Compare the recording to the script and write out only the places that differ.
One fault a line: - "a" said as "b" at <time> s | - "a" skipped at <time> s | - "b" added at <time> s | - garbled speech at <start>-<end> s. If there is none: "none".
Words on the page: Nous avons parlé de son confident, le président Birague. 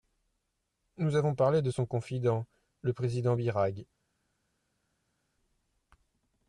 none